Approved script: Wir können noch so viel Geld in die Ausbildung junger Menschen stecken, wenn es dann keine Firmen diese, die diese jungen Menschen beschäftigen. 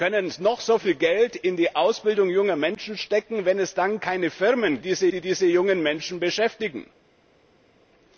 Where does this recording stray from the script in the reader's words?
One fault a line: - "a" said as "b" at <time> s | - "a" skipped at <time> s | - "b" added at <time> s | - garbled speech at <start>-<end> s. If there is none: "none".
none